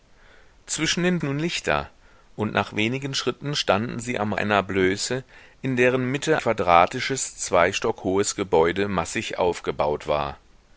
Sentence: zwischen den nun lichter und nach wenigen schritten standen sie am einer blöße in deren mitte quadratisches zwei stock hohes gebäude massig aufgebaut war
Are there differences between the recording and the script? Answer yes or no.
no